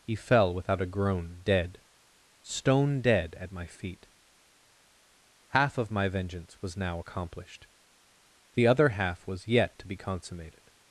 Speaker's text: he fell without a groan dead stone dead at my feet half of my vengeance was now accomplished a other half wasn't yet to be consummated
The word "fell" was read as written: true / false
true